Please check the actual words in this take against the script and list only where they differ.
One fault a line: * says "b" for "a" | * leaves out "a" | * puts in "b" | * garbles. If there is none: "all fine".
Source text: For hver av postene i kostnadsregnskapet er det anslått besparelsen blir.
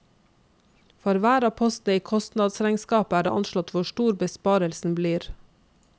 * puts in "hvor stor"